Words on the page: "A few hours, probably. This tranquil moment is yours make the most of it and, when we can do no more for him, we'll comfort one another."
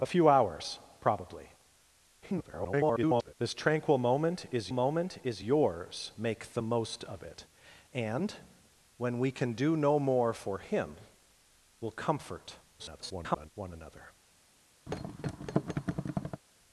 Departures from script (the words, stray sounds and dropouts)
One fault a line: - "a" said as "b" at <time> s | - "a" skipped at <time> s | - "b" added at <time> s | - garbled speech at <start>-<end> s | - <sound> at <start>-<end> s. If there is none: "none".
- garbled speech at 2.2-3.3 s
- "moment is" added at 4.7 s
- garbled speech at 12.8-13.5 s
- thud at 14.9-16.4 s